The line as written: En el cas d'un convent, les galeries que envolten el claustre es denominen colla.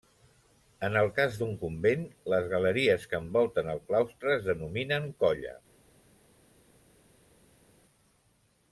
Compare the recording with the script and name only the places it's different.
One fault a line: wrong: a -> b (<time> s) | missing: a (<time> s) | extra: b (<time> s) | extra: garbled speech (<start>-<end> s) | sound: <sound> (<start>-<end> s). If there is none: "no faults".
no faults